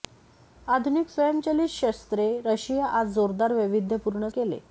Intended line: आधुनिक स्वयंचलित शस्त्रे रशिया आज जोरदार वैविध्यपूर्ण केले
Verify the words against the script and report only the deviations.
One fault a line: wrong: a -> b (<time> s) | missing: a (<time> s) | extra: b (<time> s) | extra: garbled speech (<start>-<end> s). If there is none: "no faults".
no faults